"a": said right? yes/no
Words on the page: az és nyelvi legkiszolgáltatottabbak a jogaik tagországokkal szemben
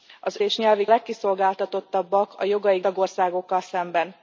yes